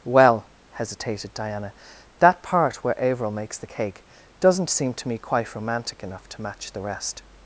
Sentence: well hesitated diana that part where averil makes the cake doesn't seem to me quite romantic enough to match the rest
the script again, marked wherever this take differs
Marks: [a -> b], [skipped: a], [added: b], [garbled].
well hesitated diana that part where averil makes the cake doesn't seem to me quite romantic enough to match the rest